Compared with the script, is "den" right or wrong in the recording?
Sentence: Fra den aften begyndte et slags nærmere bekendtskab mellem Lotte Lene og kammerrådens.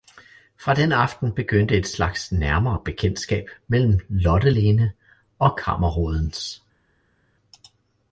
right